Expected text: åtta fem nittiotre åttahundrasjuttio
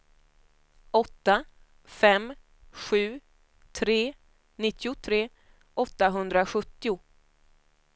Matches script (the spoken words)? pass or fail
fail